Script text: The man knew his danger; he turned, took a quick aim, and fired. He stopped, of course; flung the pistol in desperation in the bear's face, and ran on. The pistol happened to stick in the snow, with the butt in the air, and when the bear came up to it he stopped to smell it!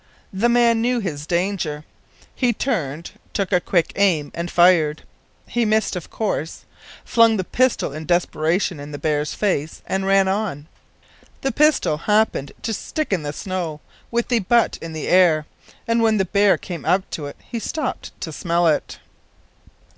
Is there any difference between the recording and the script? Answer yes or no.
yes